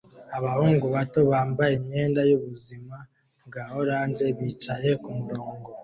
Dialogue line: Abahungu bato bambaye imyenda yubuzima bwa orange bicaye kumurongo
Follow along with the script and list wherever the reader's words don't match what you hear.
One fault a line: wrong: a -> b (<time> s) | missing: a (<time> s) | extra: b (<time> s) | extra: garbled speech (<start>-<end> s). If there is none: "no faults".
no faults